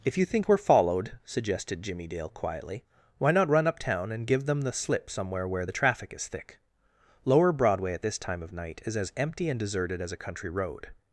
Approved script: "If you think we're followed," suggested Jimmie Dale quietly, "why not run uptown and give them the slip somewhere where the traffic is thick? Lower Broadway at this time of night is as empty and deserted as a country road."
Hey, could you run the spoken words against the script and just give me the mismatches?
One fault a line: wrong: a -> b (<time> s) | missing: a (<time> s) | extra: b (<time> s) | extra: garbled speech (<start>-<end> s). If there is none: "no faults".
no faults